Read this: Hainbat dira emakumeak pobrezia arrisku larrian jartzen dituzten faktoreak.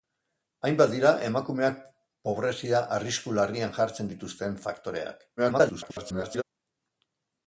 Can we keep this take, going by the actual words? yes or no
no